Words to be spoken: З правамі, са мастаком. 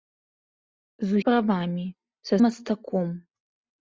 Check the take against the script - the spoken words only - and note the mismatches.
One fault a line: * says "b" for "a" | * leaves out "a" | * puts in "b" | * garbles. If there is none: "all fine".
all fine